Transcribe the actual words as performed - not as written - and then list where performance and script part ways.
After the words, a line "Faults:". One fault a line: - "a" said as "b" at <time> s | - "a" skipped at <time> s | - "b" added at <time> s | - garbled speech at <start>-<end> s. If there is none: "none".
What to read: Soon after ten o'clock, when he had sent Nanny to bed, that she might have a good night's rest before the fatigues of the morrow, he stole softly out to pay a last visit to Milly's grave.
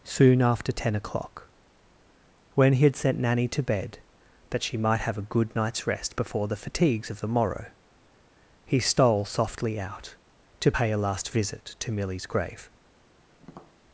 Soon after ten o'clock, when he had sent Nanny to bed, that she might have a good night's rest before the fatigues of the morrow, he stole softly out to pay a last visit to Milly's grave.
Faults:
none